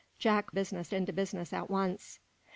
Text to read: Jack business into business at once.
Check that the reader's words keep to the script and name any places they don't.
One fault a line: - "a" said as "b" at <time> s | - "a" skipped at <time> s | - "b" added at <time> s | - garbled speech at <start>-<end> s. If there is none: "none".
none